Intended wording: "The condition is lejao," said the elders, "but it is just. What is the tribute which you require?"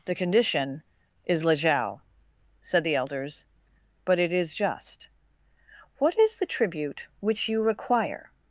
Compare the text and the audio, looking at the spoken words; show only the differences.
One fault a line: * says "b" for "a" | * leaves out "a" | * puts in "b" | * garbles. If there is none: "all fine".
all fine